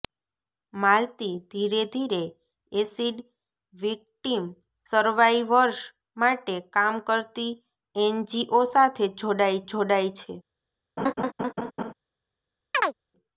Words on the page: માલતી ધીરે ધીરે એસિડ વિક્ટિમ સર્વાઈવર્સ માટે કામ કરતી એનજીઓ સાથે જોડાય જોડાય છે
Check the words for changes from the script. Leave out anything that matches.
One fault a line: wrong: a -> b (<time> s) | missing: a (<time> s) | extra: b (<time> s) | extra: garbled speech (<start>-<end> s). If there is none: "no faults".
no faults